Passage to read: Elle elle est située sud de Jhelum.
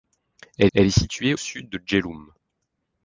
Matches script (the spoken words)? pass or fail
pass